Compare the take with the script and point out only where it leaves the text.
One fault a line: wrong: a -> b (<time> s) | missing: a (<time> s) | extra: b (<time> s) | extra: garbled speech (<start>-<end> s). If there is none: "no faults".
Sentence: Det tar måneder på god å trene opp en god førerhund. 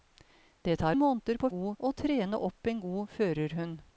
no faults